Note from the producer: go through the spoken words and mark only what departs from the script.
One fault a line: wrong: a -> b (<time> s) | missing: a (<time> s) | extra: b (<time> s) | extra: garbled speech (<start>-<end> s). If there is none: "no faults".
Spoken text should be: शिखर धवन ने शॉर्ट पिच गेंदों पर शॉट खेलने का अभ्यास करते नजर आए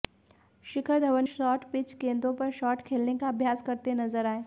missing: ने (1.2 s)